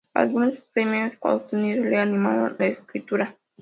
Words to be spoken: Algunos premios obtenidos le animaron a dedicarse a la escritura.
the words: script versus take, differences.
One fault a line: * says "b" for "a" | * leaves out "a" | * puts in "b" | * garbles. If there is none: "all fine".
* leaves out "a dedicarse a"